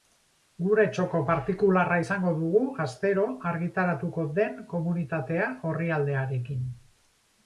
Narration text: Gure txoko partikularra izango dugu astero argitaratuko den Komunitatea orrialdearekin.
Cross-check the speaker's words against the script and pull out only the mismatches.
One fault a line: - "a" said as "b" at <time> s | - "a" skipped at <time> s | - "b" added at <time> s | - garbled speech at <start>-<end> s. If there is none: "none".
none